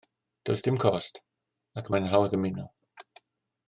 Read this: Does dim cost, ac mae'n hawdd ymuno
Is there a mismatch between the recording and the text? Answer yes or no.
no